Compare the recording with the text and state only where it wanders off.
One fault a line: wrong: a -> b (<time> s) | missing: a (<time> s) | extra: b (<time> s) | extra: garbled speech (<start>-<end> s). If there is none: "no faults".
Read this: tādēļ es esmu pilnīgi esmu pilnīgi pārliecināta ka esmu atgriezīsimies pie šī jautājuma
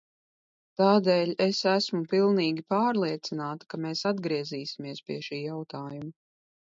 missing: esmu pilnīgi (2.6 s)
wrong: esmu -> mēs (3.9 s)